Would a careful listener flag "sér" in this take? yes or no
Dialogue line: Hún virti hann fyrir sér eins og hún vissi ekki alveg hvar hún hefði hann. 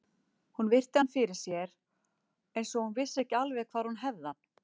no